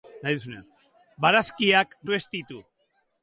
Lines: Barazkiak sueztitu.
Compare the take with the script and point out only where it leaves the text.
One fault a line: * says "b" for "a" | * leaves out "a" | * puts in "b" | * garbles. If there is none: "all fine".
all fine